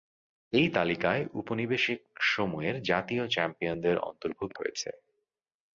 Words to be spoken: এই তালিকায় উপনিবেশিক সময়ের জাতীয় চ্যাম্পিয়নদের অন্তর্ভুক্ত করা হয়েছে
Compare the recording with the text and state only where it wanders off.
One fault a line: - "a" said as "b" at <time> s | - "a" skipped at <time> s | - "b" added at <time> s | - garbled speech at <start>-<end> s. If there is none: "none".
- "করা" skipped at 4.6 s